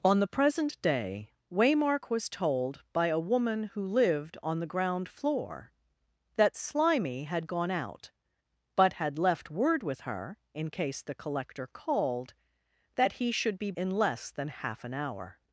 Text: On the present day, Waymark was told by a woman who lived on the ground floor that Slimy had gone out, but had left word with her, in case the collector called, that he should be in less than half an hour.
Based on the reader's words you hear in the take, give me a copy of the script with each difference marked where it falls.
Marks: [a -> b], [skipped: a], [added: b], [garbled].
On the present day, Waymark was told by a woman who lived on the ground floor that Slimy had gone out, but had left word with her, in case the collector called, that he should be in less than half an hour.